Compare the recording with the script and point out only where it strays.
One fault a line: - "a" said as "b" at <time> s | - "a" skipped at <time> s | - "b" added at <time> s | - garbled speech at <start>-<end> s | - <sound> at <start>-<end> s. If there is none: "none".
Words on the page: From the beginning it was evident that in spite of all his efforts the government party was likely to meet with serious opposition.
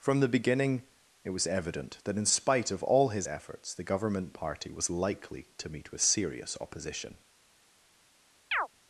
- chirp at 8.5-8.7 s